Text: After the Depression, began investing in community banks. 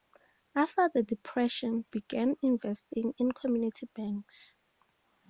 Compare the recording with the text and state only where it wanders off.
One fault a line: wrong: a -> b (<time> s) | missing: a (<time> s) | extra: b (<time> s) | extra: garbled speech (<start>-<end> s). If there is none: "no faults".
no faults